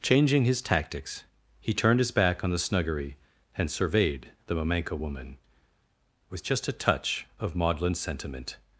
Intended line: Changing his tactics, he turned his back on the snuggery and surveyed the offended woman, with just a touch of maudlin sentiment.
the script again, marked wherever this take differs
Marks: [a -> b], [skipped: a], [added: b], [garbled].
Changing his tactics, he turned his back on the snuggery and surveyed the [offended -> mamenka] woman, with just a touch of maudlin sentiment.